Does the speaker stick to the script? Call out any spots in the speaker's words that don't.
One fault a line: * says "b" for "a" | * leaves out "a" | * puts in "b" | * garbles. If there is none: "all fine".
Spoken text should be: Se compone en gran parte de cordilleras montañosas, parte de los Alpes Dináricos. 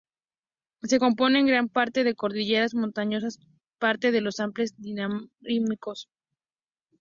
all fine